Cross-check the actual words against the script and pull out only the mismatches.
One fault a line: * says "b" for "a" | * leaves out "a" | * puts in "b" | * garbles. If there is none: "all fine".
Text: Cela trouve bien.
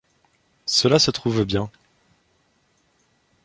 * puts in "se"